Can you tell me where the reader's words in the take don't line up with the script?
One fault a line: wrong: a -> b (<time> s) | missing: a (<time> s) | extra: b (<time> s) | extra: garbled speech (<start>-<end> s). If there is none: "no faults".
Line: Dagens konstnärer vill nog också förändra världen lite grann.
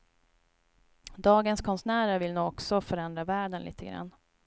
no faults